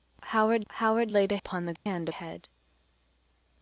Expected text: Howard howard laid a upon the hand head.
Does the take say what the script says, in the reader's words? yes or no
yes